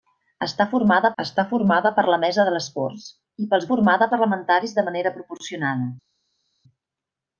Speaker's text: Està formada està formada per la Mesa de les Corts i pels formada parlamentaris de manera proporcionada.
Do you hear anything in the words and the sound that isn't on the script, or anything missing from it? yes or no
no